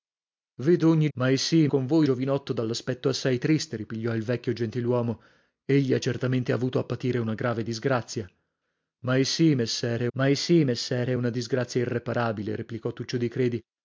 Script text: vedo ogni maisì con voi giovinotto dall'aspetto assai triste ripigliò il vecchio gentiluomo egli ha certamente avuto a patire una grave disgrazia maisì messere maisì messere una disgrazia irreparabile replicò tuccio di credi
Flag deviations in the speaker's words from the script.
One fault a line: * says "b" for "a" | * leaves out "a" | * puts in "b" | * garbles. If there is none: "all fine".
all fine